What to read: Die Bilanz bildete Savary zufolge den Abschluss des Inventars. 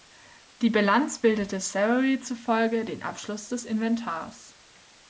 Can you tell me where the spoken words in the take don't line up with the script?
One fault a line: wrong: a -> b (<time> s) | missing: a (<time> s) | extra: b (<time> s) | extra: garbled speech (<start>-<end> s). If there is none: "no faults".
no faults